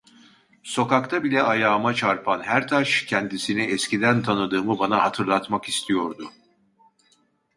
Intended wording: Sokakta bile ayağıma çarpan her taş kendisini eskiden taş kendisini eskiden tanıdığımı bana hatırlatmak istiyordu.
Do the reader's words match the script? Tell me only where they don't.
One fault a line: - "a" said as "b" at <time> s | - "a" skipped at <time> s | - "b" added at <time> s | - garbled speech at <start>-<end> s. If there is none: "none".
- "taş kendisini eskiden" skipped at 4.2 s